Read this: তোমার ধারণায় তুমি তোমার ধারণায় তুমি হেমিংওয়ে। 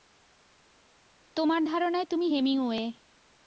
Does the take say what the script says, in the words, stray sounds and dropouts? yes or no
no